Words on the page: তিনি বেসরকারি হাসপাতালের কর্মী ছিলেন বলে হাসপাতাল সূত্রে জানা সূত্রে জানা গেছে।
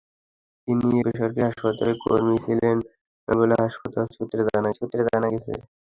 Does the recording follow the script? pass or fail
pass